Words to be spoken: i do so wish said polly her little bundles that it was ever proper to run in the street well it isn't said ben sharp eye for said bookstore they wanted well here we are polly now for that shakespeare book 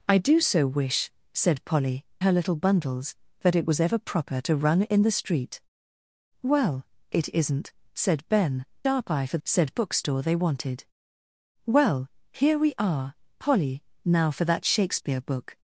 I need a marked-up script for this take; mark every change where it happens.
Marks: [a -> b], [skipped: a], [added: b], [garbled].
i do so wish said polly her little bundles that it was ever proper to run in the street well it isn't said ben sharp eye for said bookstore they wanted well here we are polly now for that shakespeare book